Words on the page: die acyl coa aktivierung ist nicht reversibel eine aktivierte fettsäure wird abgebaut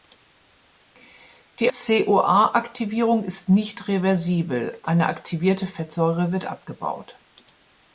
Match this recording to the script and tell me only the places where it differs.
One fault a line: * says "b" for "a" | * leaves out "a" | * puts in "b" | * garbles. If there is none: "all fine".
* leaves out "acyl"